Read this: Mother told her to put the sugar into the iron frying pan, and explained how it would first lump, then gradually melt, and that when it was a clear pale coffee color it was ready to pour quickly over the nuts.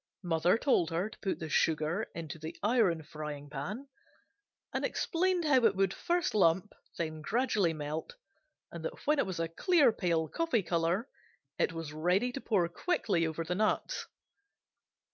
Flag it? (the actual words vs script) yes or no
no